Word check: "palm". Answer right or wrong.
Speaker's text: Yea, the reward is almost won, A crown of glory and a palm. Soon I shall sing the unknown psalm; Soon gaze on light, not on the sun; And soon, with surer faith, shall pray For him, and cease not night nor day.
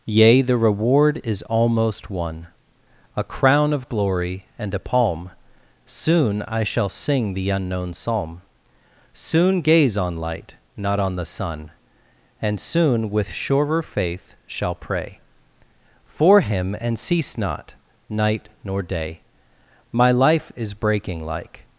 right